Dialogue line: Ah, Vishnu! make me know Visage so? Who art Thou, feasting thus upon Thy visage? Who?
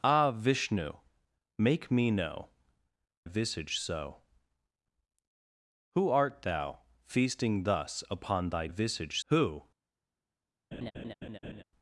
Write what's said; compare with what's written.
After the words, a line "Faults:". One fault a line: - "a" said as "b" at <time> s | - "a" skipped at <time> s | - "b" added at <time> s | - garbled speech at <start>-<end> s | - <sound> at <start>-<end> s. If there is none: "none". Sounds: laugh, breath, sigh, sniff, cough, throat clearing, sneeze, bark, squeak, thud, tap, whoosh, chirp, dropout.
Ah, Vishnu! make me know Visage so? Who art Thou, feasting thus upon Thy visage? Who?
Faults:
- laugh at 10.7-11.6 s